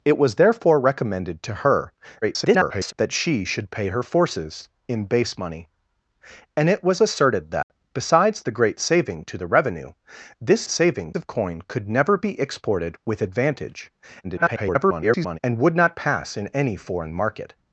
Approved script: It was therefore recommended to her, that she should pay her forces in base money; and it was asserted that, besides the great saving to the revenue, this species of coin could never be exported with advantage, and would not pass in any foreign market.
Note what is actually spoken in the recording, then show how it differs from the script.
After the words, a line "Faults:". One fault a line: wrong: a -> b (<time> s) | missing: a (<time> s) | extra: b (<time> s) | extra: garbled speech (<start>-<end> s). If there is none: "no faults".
It was therefore recommended to her, [garbled] that she should pay her forces in base money; and it was asserted that, besides the great saving to the revenue, this saving of coin could never be exported with advantage, [garbled] and would not pass in any foreign market.
Faults:
extra: garbled speech (2.2-2.9 s)
wrong: species -> saving (10.7 s)
extra: garbled speech (14.2-15.4 s)